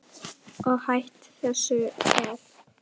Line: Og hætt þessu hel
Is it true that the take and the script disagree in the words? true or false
false